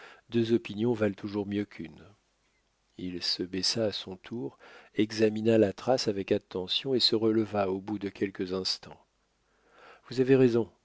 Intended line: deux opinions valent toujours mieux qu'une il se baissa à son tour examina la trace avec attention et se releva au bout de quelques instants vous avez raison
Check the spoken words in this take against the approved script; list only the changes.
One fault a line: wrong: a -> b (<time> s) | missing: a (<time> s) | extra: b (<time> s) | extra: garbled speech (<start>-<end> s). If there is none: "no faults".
no faults